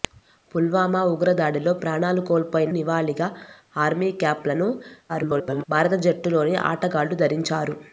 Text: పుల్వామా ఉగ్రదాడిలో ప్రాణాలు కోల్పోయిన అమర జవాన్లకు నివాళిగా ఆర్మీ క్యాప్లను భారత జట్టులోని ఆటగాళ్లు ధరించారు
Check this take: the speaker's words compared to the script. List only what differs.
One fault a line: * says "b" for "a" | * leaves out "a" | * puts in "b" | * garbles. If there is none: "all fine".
* leaves out "అమర జవాన్లకు"
* garbles